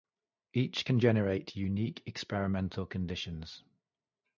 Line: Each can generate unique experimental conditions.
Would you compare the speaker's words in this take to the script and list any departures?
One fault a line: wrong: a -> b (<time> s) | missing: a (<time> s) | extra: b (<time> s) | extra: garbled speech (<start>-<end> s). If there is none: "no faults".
no faults